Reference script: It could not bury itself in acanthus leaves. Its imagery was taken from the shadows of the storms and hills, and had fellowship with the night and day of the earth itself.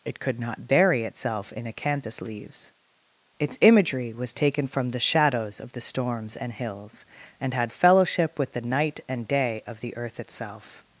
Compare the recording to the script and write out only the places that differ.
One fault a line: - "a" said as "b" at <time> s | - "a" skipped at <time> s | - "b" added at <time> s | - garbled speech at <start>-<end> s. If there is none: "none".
none